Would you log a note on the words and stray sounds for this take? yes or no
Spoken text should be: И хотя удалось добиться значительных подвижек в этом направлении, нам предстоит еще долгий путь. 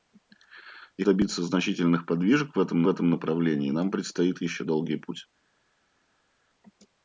yes